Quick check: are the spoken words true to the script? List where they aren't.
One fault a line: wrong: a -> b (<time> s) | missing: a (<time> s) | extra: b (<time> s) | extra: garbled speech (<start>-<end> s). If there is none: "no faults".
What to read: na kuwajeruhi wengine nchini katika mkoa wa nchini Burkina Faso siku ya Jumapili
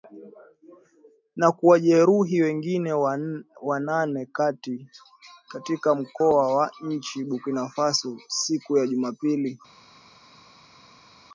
wrong: nchini -> wanane (3.6 s)